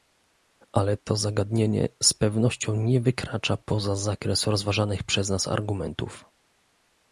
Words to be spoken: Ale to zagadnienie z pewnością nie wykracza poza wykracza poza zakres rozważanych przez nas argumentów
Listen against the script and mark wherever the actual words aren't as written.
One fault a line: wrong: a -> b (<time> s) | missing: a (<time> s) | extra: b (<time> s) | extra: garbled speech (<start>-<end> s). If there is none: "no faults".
missing: wykracza poza (4.0 s)